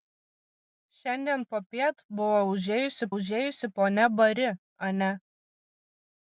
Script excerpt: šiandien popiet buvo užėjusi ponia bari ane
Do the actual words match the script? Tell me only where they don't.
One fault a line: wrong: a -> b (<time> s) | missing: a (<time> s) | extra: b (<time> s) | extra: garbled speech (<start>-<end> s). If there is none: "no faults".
extra: užėjusi (3.2 s)